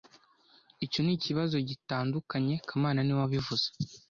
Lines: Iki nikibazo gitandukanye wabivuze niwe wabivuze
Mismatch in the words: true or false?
true